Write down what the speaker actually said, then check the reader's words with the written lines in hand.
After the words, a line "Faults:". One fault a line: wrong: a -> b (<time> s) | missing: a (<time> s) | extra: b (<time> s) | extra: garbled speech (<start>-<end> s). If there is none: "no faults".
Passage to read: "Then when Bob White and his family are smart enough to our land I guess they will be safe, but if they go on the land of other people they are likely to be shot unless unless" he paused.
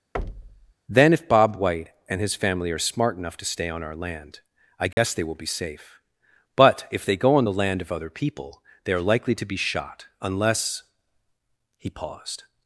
"Then if Bob White and his family are smart enough to stay on our land I guess they will be safe, but if they go on the land of other people they are likely to be shot unless" he paused.
Faults:
wrong: when -> if (1.1 s)
extra: stay on (3.5 s)
missing: unless (10.8 s)